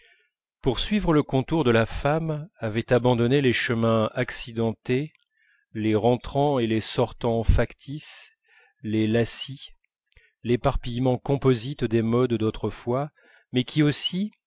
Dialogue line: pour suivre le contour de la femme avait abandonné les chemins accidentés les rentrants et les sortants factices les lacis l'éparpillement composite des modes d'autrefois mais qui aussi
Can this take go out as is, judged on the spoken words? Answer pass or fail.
pass